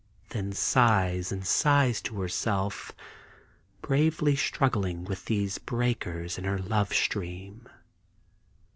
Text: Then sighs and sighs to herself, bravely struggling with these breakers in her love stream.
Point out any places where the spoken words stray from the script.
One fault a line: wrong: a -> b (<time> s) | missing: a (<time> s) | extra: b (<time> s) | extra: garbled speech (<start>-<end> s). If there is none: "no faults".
no faults